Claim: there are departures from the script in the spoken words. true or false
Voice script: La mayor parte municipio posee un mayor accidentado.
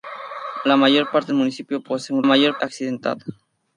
false